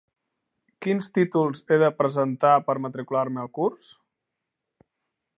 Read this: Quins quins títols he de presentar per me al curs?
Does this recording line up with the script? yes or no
no